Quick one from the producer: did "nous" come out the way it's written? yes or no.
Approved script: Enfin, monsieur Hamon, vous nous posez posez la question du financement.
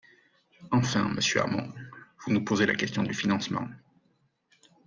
yes